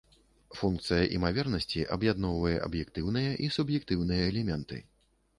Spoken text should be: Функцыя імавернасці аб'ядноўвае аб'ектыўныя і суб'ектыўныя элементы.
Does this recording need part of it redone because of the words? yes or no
no